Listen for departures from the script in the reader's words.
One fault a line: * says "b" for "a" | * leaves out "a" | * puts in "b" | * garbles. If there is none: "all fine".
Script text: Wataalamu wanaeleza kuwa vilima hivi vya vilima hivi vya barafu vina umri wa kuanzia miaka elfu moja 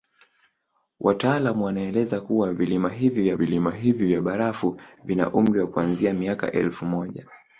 all fine